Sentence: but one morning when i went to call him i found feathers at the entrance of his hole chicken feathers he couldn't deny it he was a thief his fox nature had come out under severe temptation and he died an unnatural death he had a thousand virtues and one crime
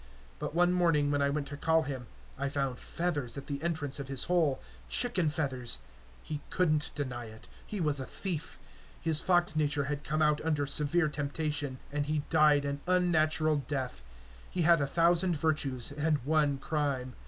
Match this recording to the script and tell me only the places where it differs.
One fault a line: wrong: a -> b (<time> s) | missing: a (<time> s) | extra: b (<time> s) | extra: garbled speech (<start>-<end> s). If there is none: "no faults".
no faults